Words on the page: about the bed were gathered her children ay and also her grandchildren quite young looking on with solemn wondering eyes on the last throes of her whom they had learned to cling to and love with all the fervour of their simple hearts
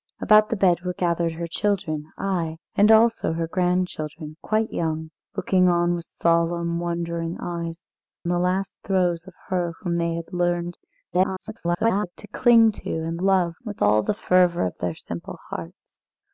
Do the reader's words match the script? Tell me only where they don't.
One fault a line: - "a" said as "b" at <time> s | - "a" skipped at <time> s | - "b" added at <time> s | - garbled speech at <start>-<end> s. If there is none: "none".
- "on" skipped at 7.8 s
- garbled speech at 11.1-12.1 s